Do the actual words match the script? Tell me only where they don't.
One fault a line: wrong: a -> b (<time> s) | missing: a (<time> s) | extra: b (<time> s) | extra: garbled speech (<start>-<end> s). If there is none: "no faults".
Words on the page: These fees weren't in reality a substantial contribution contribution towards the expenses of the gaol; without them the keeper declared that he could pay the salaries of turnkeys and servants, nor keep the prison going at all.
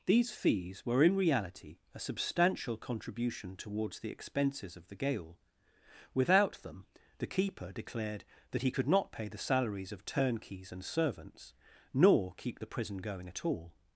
wrong: weren't -> were (0.8 s)
missing: contribution (3.5 s)
extra: not (8.9 s)